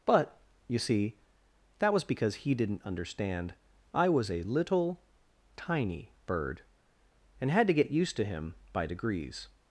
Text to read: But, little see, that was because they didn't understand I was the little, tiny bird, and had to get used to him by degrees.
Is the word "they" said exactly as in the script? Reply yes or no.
no